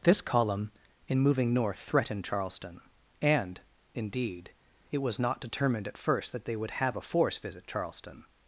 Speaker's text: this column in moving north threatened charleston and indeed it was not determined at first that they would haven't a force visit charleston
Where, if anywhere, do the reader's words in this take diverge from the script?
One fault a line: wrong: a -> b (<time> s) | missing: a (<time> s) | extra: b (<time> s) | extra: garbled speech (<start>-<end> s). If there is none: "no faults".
wrong: haven't -> have (6.7 s)